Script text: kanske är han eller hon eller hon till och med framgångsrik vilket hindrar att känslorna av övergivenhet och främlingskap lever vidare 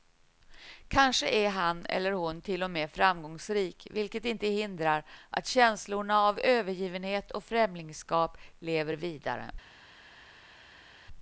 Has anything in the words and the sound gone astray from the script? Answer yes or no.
yes